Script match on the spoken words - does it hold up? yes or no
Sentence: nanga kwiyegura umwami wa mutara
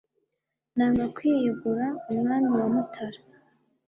yes